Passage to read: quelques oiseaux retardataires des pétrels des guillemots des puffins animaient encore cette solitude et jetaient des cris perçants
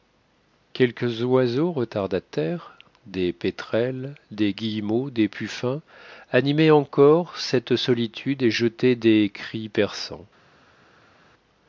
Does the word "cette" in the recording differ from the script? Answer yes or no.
no